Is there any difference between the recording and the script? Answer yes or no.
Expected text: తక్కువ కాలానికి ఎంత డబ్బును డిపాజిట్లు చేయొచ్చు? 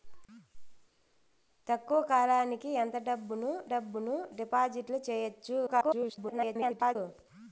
yes